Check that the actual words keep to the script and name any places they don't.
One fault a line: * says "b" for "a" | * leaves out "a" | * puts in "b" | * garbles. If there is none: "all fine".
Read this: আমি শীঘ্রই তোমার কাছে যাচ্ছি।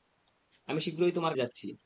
* leaves out "কাছে"